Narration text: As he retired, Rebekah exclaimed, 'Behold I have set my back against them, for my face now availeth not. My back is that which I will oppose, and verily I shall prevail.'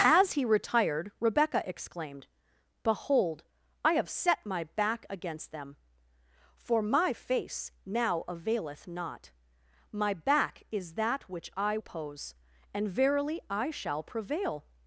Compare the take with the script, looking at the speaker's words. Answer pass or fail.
fail